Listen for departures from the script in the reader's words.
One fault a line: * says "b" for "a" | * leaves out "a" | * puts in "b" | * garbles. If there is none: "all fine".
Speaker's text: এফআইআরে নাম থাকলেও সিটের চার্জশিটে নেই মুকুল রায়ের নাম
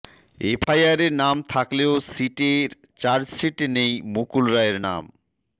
all fine